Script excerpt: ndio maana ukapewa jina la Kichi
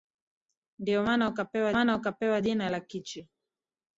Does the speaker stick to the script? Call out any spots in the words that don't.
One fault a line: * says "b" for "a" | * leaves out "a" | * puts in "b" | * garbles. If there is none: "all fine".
* puts in "maana ukapewa"